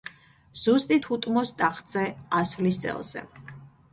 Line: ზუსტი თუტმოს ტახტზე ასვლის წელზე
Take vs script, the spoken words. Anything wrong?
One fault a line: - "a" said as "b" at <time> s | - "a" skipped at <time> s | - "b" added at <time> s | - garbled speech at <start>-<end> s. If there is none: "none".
none